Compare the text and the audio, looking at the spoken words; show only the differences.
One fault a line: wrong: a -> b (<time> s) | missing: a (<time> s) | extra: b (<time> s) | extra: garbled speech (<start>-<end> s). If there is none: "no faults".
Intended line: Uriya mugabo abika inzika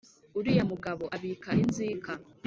no faults